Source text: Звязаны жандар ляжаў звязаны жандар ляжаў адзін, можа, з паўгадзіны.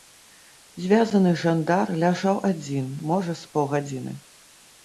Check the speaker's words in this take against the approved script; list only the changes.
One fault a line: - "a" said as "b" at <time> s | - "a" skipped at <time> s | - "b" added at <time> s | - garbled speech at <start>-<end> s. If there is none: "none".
- "звязаны жандар ляжаў" skipped at 2.4 s